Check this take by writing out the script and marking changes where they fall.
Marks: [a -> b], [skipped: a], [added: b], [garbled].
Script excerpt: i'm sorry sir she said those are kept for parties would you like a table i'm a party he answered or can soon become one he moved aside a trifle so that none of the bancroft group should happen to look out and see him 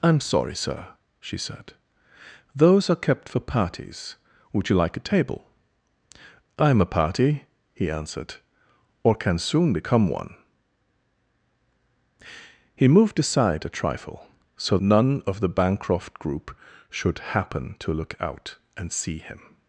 i'm sorry sir she said those are kept for parties would you like a table i'm a party he answered or can soon become one he moved aside a trifle so [skipped: that] none of the bancroft group should happen to look out and see him